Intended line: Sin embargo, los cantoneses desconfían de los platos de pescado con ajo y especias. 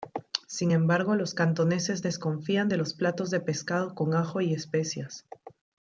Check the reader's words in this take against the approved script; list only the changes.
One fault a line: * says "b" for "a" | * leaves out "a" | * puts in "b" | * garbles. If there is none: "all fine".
all fine